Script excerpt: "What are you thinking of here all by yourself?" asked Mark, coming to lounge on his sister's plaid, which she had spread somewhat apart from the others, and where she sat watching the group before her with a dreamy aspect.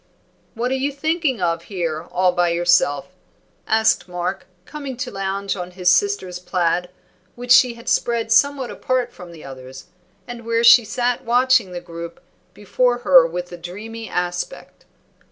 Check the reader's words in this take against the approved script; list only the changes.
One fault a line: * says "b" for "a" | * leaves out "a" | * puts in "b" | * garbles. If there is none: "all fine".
all fine